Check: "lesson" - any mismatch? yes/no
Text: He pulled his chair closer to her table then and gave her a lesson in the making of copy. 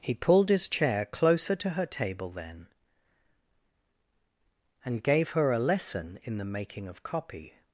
no